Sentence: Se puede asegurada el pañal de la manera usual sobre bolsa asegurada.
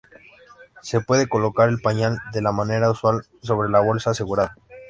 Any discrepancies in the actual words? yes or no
yes